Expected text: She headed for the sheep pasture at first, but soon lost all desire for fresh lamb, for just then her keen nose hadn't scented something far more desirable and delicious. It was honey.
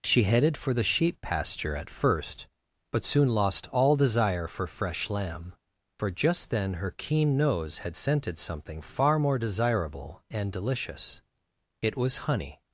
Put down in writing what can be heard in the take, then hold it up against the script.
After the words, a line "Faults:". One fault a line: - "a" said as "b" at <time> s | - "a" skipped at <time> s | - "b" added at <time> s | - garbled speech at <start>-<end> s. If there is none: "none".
She headed for the sheep pasture at first, but soon lost all desire for fresh lamb, for just then her keen nose had scented something far more desirable and delicious. It was honey.
Faults:
- "hadn't" said as "had" at 7.8 s